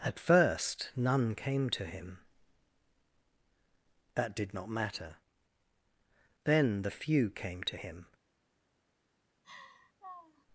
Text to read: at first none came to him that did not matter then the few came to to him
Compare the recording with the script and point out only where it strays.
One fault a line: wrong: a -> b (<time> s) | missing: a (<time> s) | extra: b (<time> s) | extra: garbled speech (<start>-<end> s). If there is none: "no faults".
missing: to (7.8 s)